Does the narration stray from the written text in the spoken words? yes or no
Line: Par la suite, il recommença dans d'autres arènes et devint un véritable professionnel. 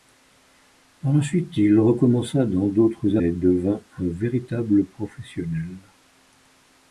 yes